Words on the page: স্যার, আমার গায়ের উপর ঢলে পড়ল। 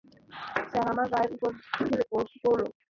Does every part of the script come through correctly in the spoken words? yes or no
yes